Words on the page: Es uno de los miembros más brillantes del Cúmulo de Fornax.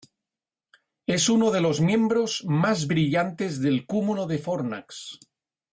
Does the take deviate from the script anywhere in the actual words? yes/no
no